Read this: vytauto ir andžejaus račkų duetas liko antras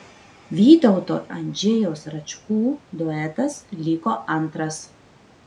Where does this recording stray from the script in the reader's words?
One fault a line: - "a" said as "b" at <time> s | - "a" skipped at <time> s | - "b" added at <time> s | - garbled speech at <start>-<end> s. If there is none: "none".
- "ir" skipped at 1.2 s